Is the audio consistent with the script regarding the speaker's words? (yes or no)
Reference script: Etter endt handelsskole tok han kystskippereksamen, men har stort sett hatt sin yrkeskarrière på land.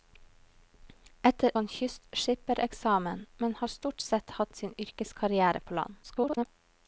no